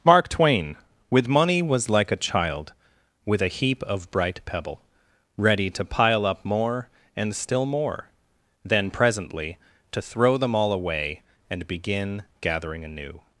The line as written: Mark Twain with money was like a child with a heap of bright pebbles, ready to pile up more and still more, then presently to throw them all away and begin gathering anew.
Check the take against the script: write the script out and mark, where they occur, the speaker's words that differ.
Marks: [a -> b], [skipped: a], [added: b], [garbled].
Mark Twain with money was like a child with a heap of bright [pebbles, -> pebble] ready to pile up more and still more, then presently to throw them all away and begin gathering anew.